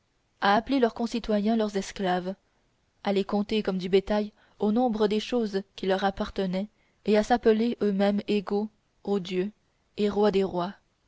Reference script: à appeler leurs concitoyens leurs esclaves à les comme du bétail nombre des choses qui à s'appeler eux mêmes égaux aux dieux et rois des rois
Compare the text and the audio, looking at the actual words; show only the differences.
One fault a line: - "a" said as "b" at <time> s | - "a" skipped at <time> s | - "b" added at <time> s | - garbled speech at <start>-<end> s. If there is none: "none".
- "compter" added at 3.2 s
- "au" added at 4.6 s
- "leur appartenaient et" added at 5.9 s